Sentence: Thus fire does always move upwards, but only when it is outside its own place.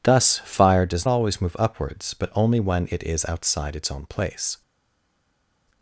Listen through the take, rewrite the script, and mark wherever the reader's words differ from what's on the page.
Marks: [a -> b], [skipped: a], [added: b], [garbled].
Thus fire does always move upwards, but only when it is outside its own place.